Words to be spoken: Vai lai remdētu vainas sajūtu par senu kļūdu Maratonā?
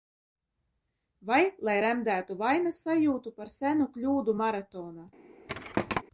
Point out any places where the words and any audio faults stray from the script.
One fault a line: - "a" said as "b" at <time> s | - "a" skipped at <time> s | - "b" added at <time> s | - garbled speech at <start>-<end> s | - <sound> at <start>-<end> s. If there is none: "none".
- thud at 5.5-6.0 s